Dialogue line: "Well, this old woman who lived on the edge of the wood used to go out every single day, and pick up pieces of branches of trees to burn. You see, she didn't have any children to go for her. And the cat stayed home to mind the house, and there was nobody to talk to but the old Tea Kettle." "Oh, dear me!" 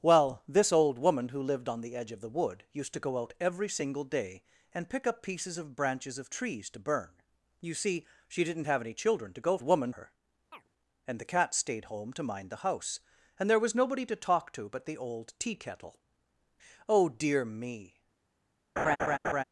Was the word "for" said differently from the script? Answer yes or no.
yes